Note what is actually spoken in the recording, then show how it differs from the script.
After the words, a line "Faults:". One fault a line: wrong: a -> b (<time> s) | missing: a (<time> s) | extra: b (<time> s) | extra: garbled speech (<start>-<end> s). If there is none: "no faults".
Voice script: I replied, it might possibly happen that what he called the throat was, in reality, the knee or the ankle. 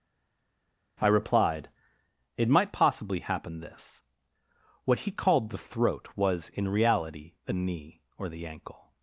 I replied, it might possibly happen this what he called the throat was, in reality, the knee or the ankle.
Faults:
wrong: that -> this (3.6 s)